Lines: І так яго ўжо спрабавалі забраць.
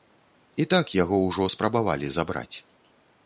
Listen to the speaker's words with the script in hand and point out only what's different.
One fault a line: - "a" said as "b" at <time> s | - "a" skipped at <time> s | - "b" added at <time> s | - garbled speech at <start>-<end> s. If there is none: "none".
none